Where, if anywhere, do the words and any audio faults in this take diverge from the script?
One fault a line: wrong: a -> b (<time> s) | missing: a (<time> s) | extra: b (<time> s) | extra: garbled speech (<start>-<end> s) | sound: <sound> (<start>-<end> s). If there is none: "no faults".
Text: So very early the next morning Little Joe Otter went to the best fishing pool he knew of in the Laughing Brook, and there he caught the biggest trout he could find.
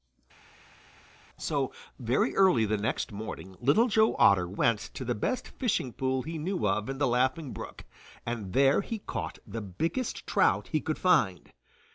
no faults